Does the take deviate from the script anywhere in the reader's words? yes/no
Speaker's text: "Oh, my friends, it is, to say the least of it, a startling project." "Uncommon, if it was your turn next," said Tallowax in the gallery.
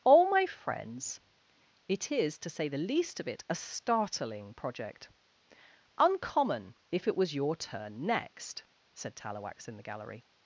no